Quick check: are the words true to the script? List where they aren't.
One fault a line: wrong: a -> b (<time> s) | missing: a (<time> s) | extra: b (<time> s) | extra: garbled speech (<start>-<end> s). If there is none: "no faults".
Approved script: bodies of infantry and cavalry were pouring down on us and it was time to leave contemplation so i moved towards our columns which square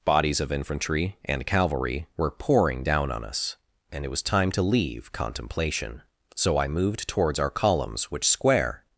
no faults